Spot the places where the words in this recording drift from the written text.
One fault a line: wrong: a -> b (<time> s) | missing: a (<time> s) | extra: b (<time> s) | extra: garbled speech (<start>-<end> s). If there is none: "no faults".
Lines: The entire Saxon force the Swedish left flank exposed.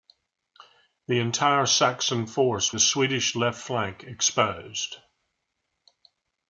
no faults